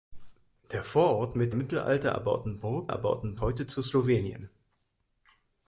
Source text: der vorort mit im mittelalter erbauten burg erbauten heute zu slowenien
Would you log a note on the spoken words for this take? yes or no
no